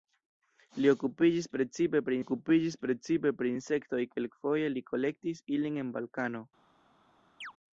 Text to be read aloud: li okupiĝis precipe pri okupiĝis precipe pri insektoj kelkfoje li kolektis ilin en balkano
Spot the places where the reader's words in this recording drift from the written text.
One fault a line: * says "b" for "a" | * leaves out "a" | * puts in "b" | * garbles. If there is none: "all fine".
all fine